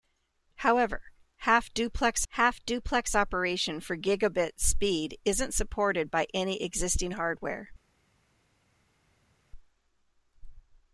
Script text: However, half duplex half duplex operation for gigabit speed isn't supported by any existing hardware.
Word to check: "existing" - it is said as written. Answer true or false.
true